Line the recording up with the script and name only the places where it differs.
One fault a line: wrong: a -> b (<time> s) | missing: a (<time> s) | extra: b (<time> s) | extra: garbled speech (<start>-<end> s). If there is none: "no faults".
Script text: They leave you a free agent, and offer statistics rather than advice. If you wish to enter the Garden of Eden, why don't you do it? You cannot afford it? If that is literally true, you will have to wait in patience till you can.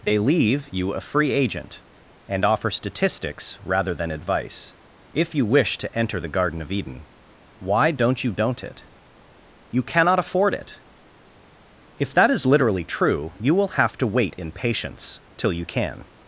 wrong: do -> don't (8.3 s)